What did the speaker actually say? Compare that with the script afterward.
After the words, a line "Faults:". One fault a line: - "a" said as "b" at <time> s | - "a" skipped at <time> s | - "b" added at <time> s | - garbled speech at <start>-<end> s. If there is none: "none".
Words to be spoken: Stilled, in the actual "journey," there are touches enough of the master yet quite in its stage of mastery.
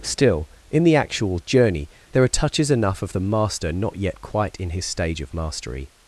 Still, in the actual "journey," there are touches enough of the master not yet quite in his stage of mastery.
Faults:
- "Stilled" said as "Still" at 0.0 s
- "not" added at 3.7 s
- "its" said as "his" at 4.7 s